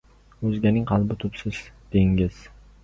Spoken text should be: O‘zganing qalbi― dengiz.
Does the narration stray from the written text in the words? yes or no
yes